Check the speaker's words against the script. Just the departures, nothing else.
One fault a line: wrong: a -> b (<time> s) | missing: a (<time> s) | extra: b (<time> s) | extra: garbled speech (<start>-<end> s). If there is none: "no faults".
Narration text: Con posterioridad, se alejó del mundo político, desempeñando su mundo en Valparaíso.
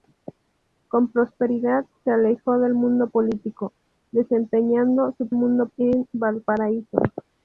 no faults